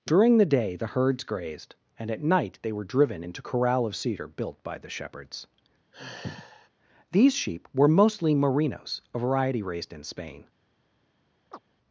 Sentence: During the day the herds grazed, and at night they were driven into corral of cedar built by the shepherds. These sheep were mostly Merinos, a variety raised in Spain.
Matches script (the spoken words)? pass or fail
pass